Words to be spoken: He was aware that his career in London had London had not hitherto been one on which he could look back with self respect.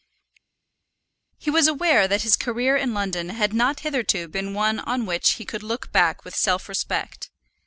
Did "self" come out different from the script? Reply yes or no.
no